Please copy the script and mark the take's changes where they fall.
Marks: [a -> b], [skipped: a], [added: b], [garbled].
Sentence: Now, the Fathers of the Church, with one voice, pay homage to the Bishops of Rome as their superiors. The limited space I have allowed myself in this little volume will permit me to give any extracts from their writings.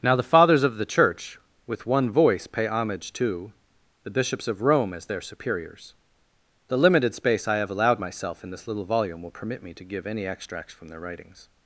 Now, the Fathers of the Church, with one voice, pay homage to the Bishops of Rome as their superiors. The limited space I have allowed myself in this little volume will permit me to give any extracts from their writings.